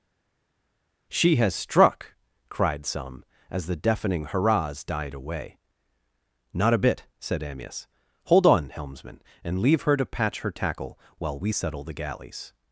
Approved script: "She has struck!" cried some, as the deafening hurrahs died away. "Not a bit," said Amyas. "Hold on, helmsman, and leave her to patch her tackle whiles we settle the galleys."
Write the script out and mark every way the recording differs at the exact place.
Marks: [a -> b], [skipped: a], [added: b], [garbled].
"She has struck!" cried some, as the deafening hurrahs died away. "Not a bit," said Amyas. "Hold on, helmsman, and leave her to patch her tackle [whiles -> while] we settle the galleys."